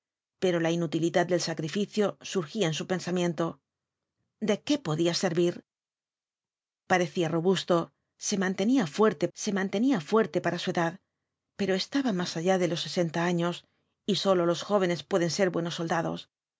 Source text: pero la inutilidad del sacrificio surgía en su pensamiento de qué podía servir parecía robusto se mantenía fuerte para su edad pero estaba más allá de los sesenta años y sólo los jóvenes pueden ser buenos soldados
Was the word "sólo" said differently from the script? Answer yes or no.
no